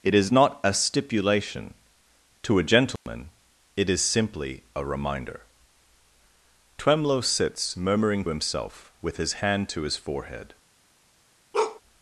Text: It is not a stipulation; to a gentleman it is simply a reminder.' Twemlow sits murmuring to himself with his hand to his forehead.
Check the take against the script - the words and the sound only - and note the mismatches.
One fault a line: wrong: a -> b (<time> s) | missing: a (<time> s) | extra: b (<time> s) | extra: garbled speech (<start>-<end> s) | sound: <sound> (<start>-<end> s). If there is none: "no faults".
sound: dropout (3.0-3.1 s)
missing: to (8.2 s)
sound: bark (11.5-11.8 s)